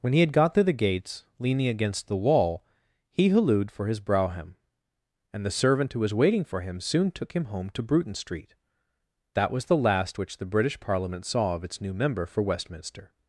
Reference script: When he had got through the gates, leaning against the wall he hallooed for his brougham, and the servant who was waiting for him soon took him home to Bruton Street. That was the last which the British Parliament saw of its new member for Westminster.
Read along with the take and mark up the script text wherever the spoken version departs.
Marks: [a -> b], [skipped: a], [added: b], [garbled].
When he had got through the gates, leaning against the wall he hallooed for his brougham, and the servant who was waiting for him soon took him home to Bruton Street. That was the last which the British Parliament saw of its new member for Westminster.